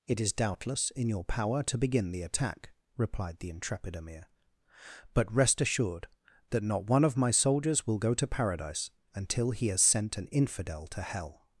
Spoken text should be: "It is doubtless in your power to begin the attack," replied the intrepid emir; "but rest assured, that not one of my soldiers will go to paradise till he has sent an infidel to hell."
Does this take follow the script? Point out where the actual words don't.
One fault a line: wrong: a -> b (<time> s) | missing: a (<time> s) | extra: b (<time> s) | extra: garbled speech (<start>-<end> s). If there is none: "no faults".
wrong: till -> until (9.1 s)